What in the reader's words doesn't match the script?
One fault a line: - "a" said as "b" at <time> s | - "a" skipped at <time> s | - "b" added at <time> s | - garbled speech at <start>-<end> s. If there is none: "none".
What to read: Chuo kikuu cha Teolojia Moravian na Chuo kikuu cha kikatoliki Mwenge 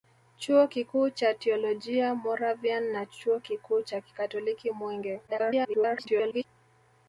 - garbled speech at 5.3-6.5 s